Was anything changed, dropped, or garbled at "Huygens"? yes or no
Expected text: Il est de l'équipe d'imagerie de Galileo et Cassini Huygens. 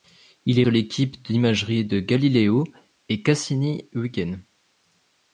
no